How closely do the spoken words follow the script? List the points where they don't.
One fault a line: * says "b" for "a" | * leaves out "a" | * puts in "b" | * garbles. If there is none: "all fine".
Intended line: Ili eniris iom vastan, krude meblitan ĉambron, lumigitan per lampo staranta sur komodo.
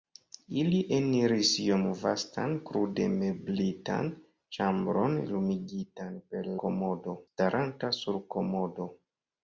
* says "komodo" for "lampo"